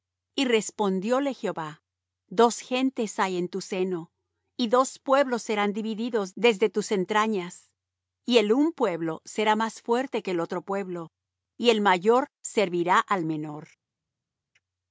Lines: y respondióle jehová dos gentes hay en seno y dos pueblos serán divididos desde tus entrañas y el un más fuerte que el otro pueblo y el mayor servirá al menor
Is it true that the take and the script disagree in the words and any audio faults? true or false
true